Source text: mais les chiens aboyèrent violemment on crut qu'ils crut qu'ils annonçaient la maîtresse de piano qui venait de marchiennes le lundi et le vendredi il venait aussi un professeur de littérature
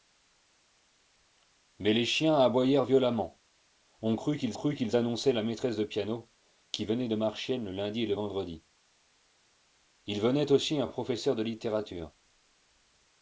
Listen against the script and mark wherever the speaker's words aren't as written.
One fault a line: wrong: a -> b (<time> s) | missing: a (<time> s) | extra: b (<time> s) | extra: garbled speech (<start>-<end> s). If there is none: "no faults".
no faults